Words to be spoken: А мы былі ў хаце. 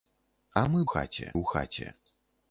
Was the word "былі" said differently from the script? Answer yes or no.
yes